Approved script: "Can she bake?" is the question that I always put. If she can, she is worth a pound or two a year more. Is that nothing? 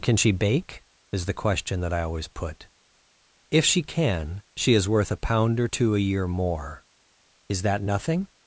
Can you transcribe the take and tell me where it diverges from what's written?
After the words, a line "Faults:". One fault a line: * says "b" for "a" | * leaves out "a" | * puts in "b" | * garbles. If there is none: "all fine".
"Can she bake?" is the question that I always put. If she can, she is worth a pound or two a year more. Is that nothing?
Faults:
all fine